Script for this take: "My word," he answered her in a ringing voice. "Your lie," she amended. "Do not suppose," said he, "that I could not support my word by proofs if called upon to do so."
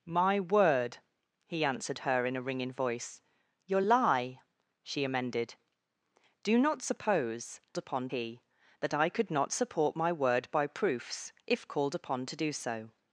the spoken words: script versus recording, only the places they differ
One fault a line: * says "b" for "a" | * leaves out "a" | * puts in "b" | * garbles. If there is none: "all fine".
* says "upon" for "said"